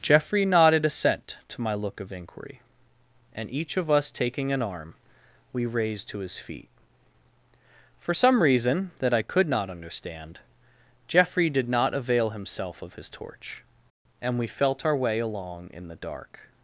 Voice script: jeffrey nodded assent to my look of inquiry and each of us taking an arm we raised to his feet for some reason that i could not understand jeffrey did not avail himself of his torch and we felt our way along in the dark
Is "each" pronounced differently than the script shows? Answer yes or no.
no